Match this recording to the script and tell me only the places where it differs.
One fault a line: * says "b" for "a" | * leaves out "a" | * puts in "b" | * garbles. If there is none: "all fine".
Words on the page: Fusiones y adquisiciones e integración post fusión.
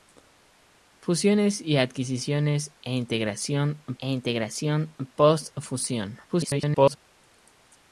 * puts in "e integración"
* garbles